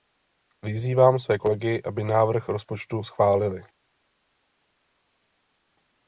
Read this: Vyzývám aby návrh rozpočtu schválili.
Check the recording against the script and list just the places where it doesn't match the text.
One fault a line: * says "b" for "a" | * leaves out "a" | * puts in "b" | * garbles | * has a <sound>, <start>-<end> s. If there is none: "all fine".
* puts in "své kolegy"